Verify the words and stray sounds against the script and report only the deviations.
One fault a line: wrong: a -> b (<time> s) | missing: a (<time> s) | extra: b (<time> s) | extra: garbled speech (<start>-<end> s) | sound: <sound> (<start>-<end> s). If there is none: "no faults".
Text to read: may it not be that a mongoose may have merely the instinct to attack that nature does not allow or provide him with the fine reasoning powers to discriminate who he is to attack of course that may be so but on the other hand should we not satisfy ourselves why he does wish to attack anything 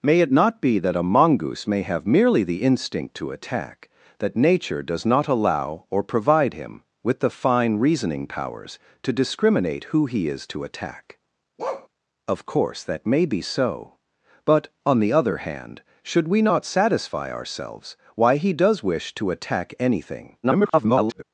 sound: bark (11.6-11.9 s)
extra: garbled speech (20.4-21.2 s)